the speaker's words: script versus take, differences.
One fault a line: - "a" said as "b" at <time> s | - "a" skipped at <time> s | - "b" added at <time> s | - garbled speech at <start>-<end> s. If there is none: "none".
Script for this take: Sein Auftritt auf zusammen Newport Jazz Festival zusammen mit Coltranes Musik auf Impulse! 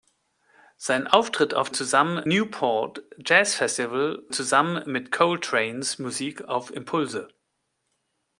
none